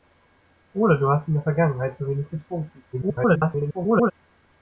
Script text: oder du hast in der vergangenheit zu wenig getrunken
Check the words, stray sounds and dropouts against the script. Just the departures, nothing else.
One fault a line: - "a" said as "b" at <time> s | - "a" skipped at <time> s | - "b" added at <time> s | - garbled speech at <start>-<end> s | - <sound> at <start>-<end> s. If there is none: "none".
- garbled speech at 2.9-4.1 s